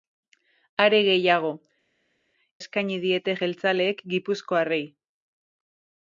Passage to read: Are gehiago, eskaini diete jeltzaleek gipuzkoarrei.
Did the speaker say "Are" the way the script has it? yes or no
yes